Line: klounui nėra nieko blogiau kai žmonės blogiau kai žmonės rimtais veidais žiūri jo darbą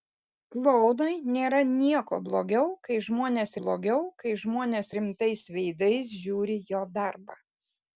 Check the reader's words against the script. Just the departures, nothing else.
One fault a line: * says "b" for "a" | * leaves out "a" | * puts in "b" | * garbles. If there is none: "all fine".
all fine